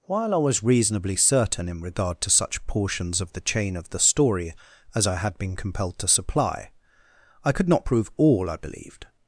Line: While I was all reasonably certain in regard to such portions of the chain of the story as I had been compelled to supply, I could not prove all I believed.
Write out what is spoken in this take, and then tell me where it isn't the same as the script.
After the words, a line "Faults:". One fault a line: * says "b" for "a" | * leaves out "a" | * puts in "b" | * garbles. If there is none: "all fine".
While I was reasonably certain in regard to such portions of the chain of the story as I had been compelled to supply, I could not prove all I believed.
Faults:
* leaves out "all"